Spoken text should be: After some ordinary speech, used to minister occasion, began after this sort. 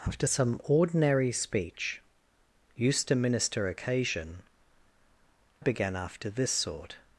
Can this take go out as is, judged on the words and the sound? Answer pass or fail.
pass